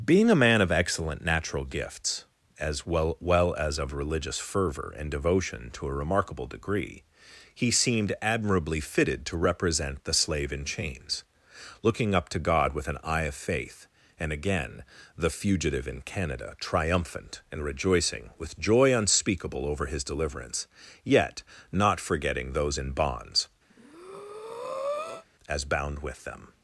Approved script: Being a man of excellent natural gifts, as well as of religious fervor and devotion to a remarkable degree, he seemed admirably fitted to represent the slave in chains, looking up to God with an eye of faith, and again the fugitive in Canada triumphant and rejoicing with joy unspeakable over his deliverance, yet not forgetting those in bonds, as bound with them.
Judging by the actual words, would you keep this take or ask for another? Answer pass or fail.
fail